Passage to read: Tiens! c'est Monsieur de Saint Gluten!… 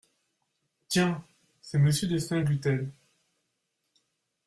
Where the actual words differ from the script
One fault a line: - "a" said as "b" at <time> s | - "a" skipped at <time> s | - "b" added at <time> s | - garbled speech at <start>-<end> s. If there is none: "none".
none